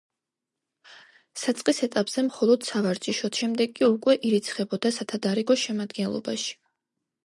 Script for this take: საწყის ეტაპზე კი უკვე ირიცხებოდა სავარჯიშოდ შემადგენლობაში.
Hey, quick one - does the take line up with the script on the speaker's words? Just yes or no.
no